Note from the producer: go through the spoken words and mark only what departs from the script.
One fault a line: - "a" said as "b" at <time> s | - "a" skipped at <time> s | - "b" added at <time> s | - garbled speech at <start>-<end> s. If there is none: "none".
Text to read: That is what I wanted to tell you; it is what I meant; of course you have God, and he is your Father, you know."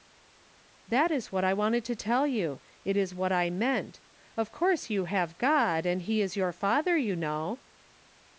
none